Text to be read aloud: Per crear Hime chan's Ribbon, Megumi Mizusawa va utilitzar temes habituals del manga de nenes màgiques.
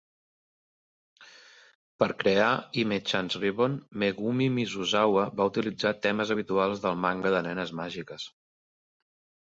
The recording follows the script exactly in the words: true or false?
true